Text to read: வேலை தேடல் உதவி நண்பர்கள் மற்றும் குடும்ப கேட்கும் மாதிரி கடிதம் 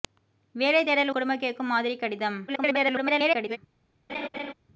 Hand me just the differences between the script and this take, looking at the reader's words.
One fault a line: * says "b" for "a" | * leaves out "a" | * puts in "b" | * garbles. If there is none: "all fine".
* leaves out "உதவி நண்பர்கள் மற்றும்"
* garbles